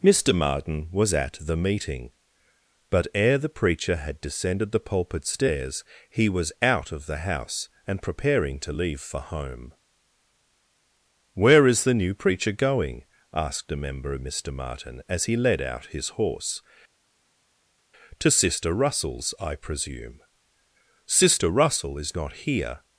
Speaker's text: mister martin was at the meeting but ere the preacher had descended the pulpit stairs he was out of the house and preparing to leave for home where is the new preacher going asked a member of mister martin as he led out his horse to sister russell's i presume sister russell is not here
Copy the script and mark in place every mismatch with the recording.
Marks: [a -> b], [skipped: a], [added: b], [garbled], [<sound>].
mister martin was at the meeting but ere the preacher had descended the pulpit stairs he was out of the house and preparing to leave for home where is the new preacher going asked a member of mister martin as he led out his horse to sister russell's i presume sister russell is not here